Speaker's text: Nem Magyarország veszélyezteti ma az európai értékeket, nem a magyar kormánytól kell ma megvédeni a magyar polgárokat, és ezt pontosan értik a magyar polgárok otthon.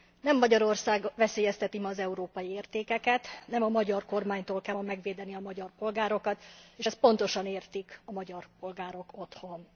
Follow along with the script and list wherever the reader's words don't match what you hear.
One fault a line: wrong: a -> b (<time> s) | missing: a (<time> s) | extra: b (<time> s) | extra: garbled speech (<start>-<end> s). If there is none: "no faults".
no faults